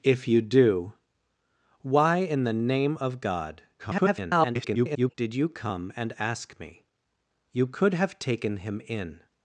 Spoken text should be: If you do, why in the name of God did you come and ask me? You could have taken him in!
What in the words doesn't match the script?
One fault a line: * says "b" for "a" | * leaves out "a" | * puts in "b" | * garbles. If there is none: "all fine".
* garbles